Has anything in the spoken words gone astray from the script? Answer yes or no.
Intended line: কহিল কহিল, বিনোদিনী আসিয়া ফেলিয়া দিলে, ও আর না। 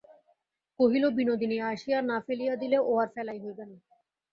yes